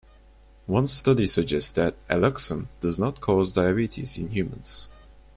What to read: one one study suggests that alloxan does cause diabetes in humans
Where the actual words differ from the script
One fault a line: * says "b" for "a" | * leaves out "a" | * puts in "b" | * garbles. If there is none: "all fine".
* leaves out "one"
* puts in "not"